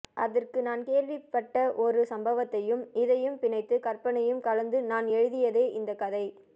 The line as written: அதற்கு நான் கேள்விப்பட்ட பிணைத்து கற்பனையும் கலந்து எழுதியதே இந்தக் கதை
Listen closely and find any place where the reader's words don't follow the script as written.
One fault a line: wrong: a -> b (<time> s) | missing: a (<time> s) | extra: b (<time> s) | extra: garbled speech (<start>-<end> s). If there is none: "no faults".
extra: ஒரு சம்பவத்தையும் இதையும் (1.8 s)
extra: நான் (4.8 s)